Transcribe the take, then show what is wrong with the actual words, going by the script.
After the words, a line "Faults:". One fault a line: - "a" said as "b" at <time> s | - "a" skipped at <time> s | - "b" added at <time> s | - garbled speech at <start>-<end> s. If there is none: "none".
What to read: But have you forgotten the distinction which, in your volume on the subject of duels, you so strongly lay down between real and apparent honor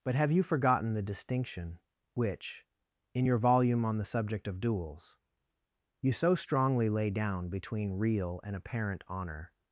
But have you forgotten the distinction which, in your volume on the subject of duels, you so strongly lay down between real and apparent honor
Faults:
none